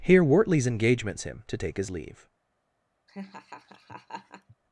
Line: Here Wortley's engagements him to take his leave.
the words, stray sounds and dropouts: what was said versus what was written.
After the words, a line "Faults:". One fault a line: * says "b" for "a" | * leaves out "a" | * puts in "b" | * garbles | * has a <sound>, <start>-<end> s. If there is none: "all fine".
Here Wortley's engagements him to take his leave.
Faults:
* has a laugh, 3.1-4.6 s